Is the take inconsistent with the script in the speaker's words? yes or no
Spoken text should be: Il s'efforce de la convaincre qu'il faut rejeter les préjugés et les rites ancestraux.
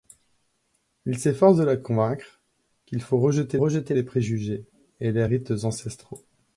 yes